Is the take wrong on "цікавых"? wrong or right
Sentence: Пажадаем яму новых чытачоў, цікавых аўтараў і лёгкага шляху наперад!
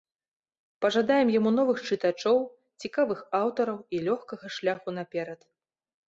right